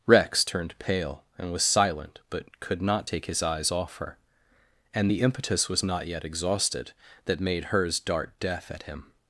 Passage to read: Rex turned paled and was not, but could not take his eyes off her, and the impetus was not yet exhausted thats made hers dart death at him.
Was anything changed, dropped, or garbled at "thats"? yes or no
yes